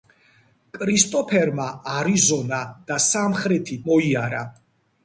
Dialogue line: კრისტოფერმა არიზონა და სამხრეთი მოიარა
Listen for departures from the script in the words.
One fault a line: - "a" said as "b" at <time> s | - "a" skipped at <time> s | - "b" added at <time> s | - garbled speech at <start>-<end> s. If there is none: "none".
none